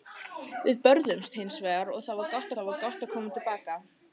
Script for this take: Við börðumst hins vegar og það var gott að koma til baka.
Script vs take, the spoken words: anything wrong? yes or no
yes